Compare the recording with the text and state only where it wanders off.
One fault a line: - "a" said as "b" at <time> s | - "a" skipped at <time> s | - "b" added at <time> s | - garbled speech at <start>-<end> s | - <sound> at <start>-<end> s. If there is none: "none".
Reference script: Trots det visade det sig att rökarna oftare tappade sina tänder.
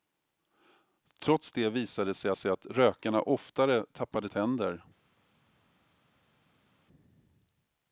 - "sig" added at 2.3 s
- "sina" skipped at 4.3 s